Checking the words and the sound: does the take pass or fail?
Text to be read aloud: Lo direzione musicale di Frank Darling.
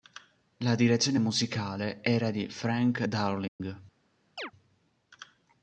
fail